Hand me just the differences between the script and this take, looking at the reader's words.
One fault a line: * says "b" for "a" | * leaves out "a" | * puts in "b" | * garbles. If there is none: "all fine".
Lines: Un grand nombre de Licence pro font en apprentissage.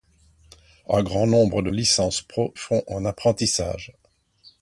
all fine